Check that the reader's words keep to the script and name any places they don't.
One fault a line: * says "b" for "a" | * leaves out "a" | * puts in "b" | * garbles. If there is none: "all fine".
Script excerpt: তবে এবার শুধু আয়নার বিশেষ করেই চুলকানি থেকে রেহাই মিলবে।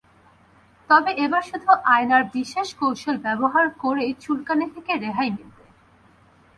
* puts in "কৌশল ব্যবহার"